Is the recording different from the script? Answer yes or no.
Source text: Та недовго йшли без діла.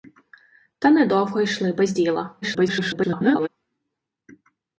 yes